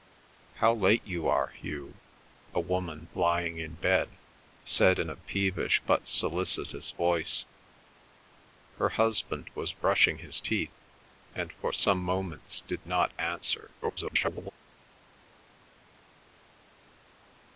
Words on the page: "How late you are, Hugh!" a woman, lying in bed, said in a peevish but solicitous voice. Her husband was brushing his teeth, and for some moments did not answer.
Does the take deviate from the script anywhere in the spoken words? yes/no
yes